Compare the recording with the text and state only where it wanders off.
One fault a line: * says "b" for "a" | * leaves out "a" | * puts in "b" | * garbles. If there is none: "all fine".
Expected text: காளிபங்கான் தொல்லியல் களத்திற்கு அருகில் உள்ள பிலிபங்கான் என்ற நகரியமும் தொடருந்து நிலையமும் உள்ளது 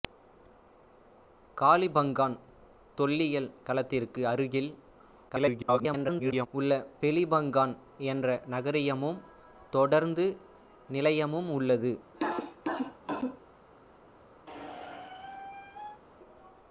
* garbles